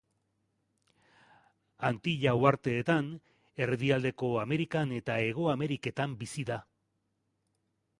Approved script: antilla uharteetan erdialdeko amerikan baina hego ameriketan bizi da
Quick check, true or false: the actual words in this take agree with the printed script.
false